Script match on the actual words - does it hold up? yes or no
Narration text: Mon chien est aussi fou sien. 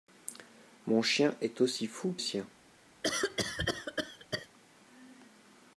yes